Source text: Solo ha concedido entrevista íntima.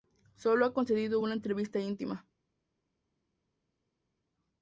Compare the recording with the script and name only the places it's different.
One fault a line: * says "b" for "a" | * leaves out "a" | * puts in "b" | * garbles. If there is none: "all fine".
* puts in "una"